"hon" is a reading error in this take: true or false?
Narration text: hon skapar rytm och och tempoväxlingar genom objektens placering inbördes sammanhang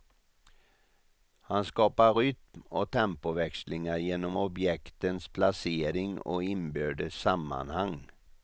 true